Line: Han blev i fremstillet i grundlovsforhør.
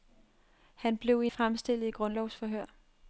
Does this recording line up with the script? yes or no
yes